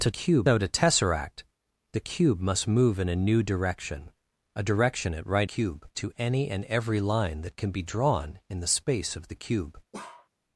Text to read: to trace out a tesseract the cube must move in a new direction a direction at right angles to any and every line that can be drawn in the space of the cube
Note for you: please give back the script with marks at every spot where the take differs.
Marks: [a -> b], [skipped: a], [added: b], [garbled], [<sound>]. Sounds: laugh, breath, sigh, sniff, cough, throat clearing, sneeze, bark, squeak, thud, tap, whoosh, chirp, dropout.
to [trace -> cube] out a tesseract the cube must move in a new direction a direction at right [angles -> cube] to any and every line that can be drawn in the space of the cube [bark]